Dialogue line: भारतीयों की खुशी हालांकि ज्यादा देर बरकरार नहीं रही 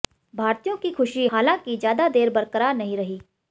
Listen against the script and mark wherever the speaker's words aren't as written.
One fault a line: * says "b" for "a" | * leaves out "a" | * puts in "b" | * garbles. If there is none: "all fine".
all fine